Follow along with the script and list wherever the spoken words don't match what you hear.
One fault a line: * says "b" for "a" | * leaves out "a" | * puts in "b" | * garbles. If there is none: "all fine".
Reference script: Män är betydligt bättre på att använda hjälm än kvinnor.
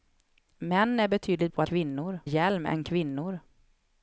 * leaves out "bättre"
* says "kvinnor" for "använda"